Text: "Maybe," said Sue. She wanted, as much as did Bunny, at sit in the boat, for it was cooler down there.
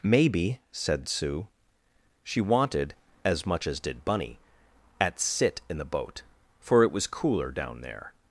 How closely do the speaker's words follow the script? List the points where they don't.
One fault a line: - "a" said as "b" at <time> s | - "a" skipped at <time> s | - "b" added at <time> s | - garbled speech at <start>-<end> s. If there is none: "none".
none